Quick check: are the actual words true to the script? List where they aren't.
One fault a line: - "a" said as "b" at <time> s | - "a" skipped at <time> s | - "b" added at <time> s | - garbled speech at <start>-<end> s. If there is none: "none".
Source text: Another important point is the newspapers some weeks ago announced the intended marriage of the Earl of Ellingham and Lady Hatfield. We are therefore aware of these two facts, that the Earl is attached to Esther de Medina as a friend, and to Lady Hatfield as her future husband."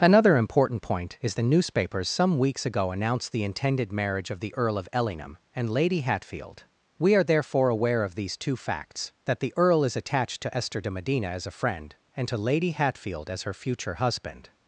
none